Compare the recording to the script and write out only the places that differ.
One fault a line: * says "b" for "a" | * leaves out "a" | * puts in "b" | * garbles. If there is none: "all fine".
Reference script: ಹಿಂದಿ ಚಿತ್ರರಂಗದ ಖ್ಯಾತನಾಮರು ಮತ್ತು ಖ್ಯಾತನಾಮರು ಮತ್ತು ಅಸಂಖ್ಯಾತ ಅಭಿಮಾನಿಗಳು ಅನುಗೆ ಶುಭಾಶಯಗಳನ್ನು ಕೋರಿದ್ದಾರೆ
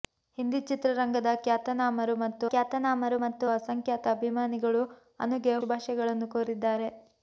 all fine